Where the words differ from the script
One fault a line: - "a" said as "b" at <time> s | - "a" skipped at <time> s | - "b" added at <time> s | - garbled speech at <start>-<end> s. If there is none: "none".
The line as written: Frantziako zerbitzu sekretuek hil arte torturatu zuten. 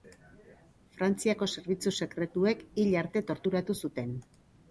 none